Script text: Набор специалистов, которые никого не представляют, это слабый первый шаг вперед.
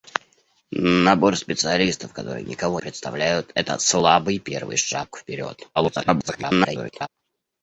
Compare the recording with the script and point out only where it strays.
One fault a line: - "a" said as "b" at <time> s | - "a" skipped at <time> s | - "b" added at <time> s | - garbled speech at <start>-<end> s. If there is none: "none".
- "не" skipped at 2.8 s
- garbled speech at 5.8-7.1 s